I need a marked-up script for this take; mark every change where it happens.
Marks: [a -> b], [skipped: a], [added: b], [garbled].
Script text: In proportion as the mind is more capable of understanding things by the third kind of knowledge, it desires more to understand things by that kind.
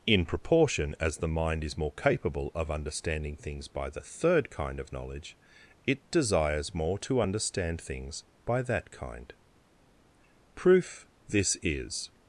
In proportion as the mind is more capable of understanding things by the third kind of knowledge, it desires more to understand things by that kind. [added: Proof This is]